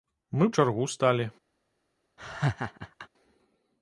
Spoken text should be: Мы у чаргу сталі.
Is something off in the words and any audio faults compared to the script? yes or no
yes